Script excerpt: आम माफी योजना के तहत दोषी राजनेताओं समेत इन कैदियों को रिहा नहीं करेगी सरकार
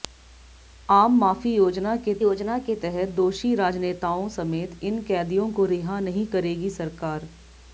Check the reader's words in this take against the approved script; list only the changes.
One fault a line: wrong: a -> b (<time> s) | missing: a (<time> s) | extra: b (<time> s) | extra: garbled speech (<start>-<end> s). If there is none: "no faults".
extra: योजना के (2.2 s)